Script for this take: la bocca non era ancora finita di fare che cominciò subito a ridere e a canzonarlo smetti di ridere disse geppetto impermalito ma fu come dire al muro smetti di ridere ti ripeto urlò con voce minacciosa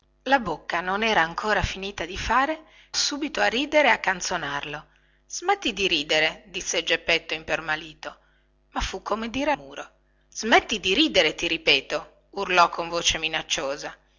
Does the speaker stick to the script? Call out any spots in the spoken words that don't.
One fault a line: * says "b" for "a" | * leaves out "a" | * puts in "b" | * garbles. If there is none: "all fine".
* leaves out "che cominciò"
* leaves out "al"